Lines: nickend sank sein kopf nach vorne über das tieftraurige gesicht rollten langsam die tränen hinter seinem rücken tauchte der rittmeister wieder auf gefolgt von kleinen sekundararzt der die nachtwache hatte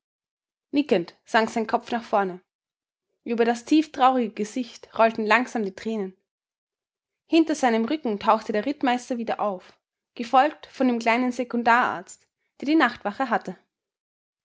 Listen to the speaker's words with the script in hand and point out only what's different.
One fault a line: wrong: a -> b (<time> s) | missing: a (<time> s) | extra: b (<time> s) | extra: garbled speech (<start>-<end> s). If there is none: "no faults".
extra: dem (10.9 s)